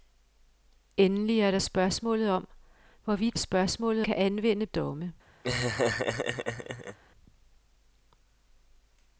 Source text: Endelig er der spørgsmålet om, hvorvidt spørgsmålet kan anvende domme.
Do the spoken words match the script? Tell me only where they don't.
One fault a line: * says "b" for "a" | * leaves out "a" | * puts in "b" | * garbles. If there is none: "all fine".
all fine